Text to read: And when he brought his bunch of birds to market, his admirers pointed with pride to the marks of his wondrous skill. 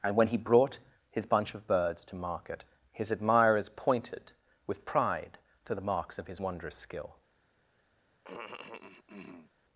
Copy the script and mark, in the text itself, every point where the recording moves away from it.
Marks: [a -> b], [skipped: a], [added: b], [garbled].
And when he brought his bunch of birds to market, his admirers pointed with pride to the marks of his wondrous skill.